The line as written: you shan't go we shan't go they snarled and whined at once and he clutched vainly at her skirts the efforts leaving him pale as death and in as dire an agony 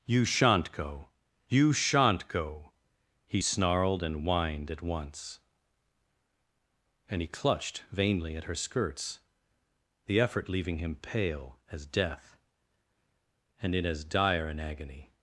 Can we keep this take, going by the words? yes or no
no